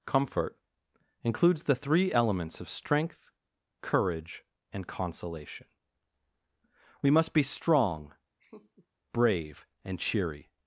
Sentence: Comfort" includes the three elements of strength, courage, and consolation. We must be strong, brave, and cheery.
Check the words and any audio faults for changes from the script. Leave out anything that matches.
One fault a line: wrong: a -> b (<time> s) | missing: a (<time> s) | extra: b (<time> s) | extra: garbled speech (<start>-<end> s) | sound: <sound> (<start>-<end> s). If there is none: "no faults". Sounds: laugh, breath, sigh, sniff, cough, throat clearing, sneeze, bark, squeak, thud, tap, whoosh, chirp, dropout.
sound: laugh (8.4-8.9 s)